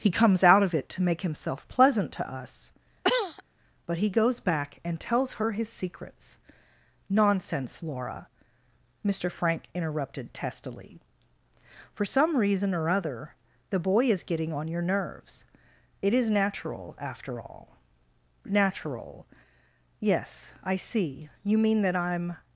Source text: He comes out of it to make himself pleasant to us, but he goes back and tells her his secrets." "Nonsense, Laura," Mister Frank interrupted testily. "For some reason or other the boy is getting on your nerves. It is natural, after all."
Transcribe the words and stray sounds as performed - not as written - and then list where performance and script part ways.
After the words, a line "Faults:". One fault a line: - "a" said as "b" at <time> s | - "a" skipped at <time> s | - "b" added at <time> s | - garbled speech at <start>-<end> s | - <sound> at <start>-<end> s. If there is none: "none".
He comes out of it to make himself pleasant to us, but he goes back and tells her his secrets." "Nonsense, Laura," Mister Frank interrupted testily. "For some reason or other the boy is getting on your nerves. It is natural, after all." "Natural? Yes, I see: you mean that I'm
Faults:
- cough at 3.0-3.4 s
- "Natural Yes I see you mean that I'm" added at 18.4 s